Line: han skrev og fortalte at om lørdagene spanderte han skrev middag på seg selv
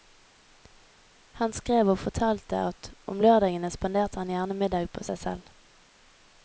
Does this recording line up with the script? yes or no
no